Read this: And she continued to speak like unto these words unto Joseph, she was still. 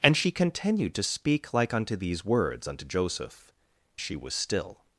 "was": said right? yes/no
yes